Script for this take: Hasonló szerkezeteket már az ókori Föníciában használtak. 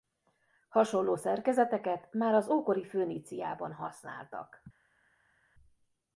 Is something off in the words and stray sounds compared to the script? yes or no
no